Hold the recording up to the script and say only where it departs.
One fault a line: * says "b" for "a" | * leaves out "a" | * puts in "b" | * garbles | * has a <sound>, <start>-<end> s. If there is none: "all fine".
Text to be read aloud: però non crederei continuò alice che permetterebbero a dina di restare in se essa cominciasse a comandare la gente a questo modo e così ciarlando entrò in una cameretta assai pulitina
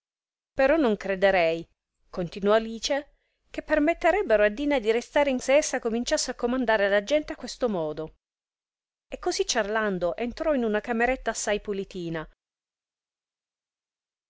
all fine